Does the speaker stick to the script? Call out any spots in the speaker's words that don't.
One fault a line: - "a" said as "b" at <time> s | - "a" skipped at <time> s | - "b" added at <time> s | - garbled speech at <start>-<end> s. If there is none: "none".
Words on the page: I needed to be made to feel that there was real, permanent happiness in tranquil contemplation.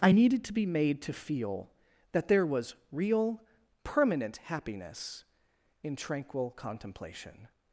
none